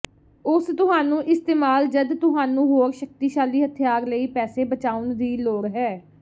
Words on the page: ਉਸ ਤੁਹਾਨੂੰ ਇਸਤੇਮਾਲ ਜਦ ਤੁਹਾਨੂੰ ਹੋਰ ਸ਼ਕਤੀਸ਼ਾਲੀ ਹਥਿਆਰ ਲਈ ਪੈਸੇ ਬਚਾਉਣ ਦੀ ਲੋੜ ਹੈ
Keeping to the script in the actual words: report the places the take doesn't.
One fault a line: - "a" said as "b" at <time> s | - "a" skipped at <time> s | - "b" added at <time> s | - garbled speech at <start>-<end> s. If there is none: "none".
none